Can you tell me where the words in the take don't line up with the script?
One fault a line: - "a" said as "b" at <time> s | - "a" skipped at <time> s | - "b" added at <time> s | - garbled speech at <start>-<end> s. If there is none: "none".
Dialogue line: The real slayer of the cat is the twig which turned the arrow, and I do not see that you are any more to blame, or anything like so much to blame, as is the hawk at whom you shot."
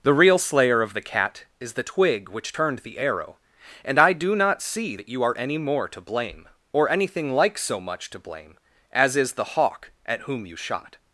none